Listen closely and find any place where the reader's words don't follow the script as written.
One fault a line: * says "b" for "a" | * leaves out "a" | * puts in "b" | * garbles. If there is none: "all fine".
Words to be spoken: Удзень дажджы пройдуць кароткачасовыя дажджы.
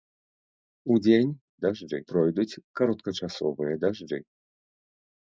all fine